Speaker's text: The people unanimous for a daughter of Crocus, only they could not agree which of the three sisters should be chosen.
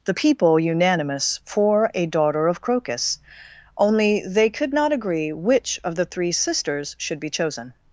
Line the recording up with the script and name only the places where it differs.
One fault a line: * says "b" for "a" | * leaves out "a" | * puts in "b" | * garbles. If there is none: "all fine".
all fine